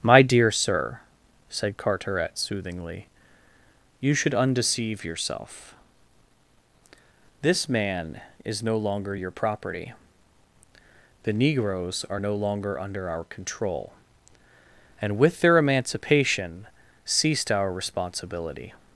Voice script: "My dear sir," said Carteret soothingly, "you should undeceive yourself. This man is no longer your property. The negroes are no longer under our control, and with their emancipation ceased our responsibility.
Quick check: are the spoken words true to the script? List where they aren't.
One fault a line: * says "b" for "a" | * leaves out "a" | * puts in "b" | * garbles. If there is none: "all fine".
all fine